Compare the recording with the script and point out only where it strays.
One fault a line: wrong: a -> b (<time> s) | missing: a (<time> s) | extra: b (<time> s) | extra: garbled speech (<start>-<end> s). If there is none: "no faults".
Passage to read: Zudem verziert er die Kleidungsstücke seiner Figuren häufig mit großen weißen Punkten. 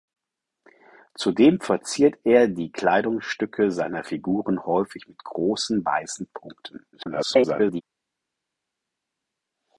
extra: garbled speech (6.9-7.8 s)